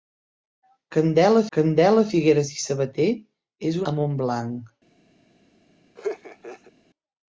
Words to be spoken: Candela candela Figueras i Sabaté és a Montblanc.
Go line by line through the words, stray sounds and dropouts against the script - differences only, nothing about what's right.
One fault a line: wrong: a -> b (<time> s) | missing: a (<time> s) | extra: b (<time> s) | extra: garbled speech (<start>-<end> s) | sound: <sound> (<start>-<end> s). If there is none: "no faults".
sound: laugh (6.0-6.7 s)